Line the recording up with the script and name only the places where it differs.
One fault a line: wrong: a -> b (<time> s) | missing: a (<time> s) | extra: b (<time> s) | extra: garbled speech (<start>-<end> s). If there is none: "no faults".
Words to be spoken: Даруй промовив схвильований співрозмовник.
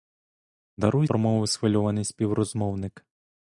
no faults